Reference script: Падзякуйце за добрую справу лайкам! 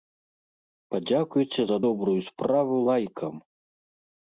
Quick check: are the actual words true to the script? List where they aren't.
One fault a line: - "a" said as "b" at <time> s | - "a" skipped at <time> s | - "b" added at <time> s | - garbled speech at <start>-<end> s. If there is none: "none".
none